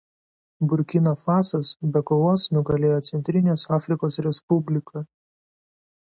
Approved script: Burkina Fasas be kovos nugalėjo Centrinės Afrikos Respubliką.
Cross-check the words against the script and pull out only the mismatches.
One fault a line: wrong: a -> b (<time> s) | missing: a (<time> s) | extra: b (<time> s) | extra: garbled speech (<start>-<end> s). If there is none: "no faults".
no faults